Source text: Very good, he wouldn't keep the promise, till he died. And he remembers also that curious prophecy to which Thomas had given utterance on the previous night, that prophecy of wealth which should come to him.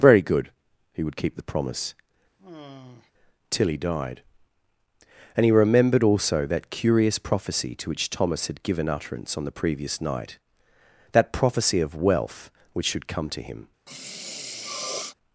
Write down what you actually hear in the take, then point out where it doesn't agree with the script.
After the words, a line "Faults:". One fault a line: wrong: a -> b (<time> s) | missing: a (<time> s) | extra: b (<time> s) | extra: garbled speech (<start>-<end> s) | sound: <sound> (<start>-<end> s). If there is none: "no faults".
Very good, he would keep the promise, till he died. And he remembered also that curious prophecy to which Thomas had given utterance on the previous night, that prophecy of wealth which should come to him.
Faults:
wrong: wouldn't -> would (1.0 s)
sound: sigh (2.4-3.1 s)
wrong: remembers -> remembered (5.5 s)
sound: sniff (13.9-15.1 s)